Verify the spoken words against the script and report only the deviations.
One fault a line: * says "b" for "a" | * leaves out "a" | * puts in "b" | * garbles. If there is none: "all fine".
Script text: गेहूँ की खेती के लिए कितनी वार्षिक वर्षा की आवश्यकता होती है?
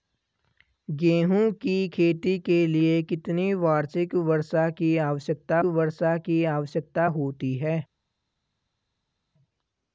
* puts in "वर्षा की आवश्यकता"